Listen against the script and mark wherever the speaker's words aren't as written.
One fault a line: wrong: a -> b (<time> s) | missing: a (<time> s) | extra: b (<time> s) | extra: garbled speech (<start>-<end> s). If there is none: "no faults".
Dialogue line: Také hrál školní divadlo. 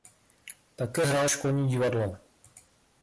no faults